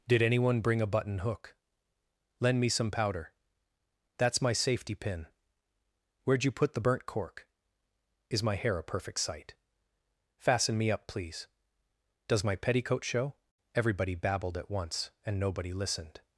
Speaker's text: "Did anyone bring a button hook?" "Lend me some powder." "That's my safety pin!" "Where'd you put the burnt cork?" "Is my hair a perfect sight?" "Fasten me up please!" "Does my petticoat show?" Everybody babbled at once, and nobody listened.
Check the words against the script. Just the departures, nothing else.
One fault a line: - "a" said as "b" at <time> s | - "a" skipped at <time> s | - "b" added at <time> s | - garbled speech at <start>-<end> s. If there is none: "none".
none